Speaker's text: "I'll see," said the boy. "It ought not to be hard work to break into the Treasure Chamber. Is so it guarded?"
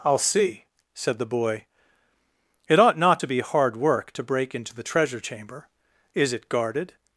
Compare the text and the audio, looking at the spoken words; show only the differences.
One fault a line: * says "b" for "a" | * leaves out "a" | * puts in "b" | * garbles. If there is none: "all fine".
* leaves out "so"